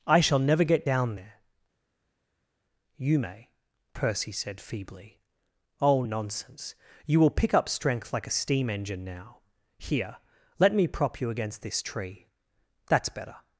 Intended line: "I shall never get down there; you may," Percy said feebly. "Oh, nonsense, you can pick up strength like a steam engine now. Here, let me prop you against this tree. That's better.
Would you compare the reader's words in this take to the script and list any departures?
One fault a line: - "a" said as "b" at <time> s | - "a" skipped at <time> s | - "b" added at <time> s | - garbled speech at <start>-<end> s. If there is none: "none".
- "can" said as "will" at 7.2 s